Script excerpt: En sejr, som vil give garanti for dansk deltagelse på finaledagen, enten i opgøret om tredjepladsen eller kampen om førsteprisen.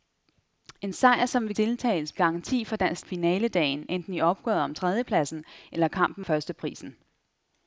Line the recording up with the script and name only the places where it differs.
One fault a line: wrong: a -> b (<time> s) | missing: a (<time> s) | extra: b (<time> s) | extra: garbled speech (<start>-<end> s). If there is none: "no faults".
wrong: give -> deltagelse (1.6 s)
missing: deltagelse på (3.1 s)
missing: om (6.2 s)